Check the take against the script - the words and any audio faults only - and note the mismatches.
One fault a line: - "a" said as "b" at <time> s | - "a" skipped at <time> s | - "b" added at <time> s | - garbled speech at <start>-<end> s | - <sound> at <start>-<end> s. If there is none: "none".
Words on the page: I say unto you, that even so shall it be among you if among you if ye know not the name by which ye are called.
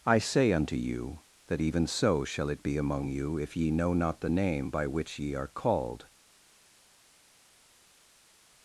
- "among you if" skipped at 3.5 s